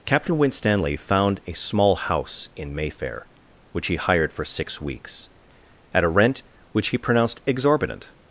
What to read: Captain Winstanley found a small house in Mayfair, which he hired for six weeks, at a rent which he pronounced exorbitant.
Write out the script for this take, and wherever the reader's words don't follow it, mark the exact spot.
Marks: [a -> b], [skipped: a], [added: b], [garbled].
Captain Winstanley found a small house in Mayfair, which he hired for six weeks, at a rent which he pronounced exorbitant.